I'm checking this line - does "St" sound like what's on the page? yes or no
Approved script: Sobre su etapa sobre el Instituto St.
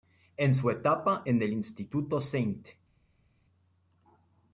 yes